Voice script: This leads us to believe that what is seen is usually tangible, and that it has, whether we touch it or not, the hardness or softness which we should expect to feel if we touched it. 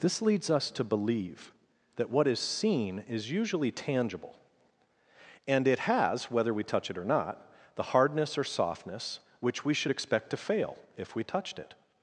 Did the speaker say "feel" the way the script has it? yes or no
no